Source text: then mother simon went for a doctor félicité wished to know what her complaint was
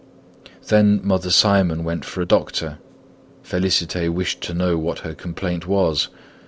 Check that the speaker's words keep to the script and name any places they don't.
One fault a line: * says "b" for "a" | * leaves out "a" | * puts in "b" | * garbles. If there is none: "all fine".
all fine